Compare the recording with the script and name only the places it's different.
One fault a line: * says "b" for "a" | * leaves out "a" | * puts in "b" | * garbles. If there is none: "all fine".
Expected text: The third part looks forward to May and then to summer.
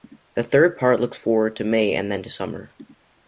all fine